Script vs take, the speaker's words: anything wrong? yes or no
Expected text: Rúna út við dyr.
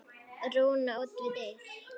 no